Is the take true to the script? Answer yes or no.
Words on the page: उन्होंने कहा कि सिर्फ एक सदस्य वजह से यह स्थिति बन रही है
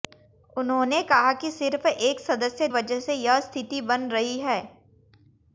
yes